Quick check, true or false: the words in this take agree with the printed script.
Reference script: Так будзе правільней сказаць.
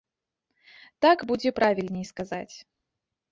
true